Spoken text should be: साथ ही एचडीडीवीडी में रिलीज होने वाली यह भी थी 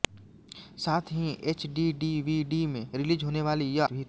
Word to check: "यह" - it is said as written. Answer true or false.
true